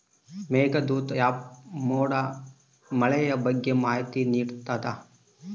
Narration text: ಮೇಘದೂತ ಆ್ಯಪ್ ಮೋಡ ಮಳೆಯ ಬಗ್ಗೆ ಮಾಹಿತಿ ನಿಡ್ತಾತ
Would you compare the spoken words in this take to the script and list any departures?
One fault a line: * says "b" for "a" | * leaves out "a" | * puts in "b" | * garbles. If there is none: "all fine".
all fine